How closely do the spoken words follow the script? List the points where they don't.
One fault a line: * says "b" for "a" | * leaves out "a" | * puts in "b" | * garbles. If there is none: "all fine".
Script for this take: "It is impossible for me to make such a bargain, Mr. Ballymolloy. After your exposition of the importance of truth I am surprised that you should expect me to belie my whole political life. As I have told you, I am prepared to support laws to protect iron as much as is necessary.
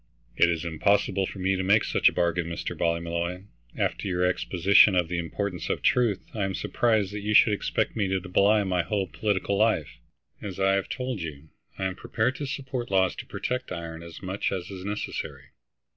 all fine